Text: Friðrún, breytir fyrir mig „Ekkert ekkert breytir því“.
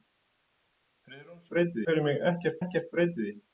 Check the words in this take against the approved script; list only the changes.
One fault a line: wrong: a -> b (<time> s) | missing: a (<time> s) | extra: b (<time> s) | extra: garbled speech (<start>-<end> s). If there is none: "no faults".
no faults